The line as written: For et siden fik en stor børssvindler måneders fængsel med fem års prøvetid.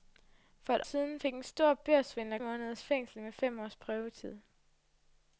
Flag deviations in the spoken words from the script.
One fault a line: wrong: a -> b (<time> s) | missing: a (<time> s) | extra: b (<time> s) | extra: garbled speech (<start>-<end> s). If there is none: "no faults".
no faults